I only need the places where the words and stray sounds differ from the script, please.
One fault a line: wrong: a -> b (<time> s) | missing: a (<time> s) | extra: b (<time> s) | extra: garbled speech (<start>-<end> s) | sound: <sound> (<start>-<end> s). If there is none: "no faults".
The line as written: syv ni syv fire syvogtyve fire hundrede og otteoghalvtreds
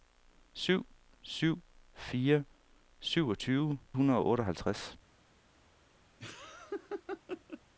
missing: ni (0.8 s)
missing: fire (3.8 s)
sound: laugh (6.2-7.6 s)